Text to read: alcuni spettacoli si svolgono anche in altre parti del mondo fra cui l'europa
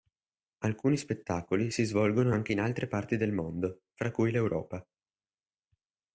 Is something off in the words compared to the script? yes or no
no